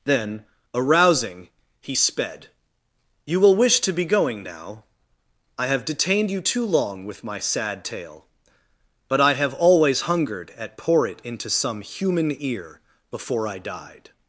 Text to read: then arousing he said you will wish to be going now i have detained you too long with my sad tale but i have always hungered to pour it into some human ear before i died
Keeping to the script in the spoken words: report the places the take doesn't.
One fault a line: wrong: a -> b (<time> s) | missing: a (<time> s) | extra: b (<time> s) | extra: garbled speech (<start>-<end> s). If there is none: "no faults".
wrong: said -> sped (1.9 s)
wrong: to -> at (10.6 s)